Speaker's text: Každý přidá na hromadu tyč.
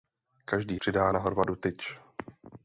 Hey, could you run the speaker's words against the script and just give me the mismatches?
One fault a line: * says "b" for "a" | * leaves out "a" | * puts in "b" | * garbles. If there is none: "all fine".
all fine